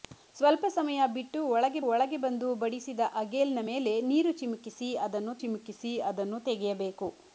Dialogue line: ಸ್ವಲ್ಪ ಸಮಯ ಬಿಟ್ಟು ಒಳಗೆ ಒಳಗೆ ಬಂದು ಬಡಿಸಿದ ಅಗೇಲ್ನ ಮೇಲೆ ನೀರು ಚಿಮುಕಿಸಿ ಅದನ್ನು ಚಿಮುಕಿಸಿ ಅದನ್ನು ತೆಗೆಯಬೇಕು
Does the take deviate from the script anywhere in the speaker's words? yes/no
no